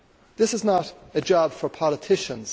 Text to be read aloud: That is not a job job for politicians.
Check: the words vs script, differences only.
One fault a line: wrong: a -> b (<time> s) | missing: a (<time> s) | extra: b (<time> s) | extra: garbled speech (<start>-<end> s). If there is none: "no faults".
wrong: That -> This (0.4 s)
missing: job (1.5 s)